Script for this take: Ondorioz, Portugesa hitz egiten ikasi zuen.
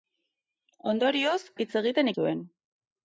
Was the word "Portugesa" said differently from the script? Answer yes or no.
yes